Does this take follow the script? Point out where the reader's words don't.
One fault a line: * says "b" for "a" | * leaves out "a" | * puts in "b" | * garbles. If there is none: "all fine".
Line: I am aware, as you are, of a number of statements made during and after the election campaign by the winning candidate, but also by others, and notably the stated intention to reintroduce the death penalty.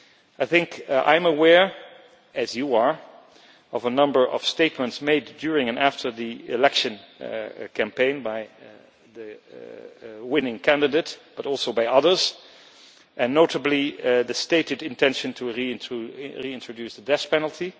all fine